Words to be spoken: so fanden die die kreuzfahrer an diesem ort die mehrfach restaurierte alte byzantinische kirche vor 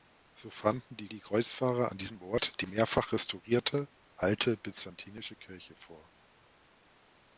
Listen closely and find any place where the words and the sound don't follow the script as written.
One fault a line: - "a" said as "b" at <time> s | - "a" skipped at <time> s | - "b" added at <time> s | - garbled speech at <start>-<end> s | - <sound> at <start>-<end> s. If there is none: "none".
none